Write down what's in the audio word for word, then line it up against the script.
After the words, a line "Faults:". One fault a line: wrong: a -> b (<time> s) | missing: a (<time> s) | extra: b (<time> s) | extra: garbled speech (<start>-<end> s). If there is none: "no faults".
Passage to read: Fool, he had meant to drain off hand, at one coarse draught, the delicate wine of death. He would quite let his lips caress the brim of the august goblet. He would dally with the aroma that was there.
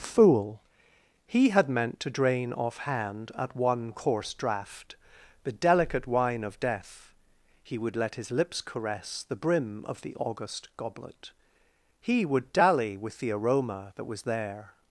Fool, he had meant to drain off hand, at one coarse draught, the delicate wine of death. He would let his lips caress the brim of the august goblet. He would dally with the aroma that was there.
Faults:
missing: quite (8.0 s)